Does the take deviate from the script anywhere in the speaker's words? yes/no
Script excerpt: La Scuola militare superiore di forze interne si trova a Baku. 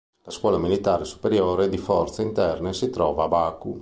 no